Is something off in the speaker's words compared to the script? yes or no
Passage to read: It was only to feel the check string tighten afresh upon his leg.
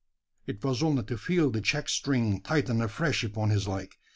no